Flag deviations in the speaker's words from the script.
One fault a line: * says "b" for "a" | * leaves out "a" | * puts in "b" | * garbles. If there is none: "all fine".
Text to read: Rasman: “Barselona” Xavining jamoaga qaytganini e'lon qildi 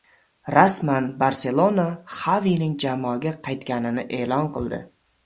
all fine